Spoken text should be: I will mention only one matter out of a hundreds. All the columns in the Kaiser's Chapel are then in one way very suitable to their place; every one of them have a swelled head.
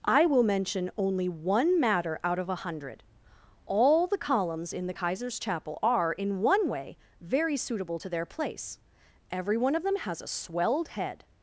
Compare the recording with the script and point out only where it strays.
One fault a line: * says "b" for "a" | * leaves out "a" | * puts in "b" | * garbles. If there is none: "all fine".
* says "hundred" for "hundreds"
* leaves out "then"
* says "has" for "have"